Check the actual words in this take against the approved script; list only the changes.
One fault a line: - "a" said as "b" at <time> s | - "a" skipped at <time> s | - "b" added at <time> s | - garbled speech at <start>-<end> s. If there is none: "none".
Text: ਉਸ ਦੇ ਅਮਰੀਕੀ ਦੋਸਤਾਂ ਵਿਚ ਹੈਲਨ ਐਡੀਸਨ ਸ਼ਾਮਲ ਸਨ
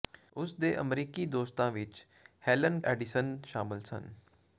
none